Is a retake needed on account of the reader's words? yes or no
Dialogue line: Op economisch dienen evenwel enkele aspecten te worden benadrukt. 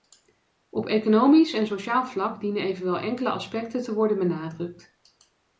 yes